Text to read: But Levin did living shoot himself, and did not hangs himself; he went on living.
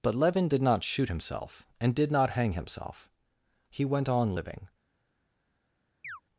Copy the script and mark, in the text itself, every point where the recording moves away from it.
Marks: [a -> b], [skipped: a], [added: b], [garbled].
But Levin did [living -> not] shoot himself, and did not [hangs -> hang] himself; he went on living.